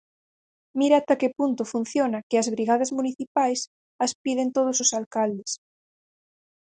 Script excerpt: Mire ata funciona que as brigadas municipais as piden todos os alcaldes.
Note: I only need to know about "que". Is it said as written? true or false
true